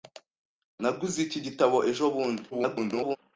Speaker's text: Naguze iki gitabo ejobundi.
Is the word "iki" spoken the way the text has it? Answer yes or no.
yes